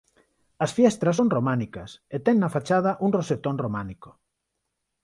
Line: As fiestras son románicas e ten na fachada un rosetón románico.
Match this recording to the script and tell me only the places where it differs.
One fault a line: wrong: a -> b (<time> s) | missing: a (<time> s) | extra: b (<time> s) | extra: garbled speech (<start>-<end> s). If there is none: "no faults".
no faults